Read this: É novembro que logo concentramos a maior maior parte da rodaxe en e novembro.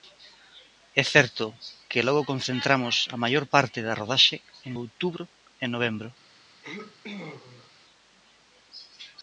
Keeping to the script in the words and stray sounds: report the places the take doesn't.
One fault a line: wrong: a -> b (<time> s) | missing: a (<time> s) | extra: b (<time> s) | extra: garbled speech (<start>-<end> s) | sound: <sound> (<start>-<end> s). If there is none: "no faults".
wrong: novembro -> certo (1.1 s)
missing: maior (3.5 s)
extra: outubro (4.8 s)
sound: sneeze (6.6-7.7 s)